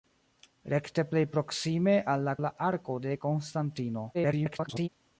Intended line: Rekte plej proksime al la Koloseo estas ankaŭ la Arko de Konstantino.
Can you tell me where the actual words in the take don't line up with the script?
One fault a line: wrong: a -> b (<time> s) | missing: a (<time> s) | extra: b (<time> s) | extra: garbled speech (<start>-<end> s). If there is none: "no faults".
missing: Koloseo estas ankaŭ (2.4 s)
extra: garbled speech (4.1-4.9 s)